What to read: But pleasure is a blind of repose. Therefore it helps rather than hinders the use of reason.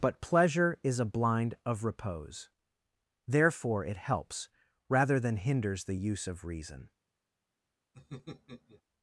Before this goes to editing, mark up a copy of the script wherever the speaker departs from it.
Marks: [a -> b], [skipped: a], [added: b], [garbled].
But pleasure is a blind of repose. Therefore it helps rather than hinders the use of reason.